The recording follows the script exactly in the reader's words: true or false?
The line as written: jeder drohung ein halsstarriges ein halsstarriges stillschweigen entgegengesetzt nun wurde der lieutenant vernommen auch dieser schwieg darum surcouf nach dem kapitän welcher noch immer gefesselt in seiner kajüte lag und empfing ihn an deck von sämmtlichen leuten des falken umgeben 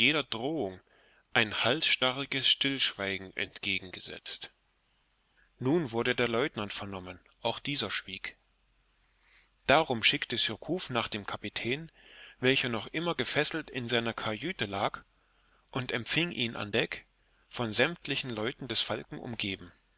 false